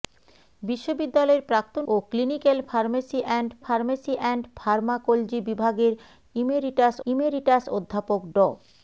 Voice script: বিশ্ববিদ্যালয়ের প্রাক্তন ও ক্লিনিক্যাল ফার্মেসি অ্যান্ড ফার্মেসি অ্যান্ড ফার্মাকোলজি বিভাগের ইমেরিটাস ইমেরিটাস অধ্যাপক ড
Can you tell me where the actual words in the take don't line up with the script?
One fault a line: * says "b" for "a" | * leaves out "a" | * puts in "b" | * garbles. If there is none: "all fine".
all fine